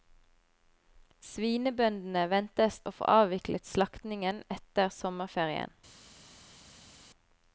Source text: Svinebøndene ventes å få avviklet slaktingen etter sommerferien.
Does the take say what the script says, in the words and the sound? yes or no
yes